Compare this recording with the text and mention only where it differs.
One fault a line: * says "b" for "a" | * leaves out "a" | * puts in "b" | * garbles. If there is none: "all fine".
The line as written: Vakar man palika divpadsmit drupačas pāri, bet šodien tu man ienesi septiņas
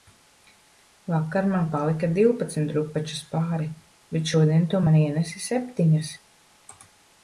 all fine